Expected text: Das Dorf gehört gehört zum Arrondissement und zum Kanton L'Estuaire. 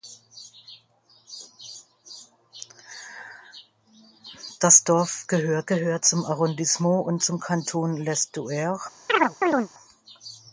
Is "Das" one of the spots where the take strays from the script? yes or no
no